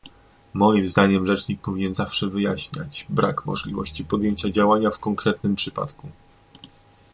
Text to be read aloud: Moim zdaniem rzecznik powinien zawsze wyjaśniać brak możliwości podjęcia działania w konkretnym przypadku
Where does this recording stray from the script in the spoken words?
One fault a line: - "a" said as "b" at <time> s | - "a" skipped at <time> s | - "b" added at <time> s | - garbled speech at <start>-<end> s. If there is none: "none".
none